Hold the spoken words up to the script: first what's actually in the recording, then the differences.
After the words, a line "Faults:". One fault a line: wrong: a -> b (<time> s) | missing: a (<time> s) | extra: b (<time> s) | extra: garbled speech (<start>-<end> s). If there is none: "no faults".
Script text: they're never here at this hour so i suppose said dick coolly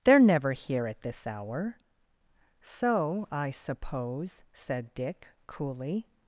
they're never here at this hour so i suppose said dick coolly
Faults:
no faults